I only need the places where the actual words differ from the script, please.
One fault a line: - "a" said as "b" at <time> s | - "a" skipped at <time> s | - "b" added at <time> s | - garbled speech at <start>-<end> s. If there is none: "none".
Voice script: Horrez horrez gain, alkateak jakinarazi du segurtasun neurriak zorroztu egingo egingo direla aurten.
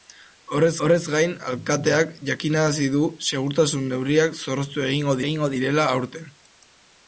none